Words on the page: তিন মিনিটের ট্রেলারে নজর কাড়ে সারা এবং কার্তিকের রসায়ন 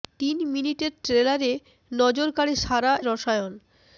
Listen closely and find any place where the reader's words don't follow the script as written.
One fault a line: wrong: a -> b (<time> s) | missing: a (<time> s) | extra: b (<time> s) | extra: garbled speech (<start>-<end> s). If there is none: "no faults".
missing: এবং কার্তিকের (2.9 s)